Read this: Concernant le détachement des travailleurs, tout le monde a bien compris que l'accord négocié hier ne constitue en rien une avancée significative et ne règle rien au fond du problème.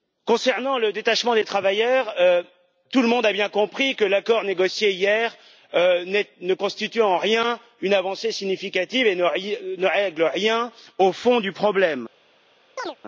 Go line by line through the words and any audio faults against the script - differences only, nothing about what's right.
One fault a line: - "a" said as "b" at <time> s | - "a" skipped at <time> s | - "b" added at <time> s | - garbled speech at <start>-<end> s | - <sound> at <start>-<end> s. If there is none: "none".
- chirp at 12.8-13.0 s